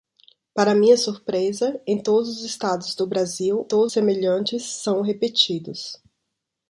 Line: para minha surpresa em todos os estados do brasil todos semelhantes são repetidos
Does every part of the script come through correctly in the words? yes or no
yes